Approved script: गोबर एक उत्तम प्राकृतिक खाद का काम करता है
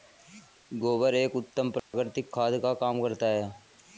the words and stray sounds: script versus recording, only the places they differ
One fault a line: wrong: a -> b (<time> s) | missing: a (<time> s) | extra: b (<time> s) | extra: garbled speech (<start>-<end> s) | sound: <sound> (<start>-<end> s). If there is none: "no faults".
sound: dropout (1.8-1.9 s)